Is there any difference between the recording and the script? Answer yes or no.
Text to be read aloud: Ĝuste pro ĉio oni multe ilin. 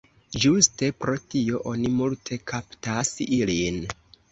yes